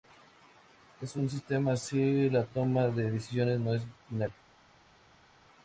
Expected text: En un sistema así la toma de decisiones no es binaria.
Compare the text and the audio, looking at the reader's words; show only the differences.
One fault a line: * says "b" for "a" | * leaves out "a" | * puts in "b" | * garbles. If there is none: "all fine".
all fine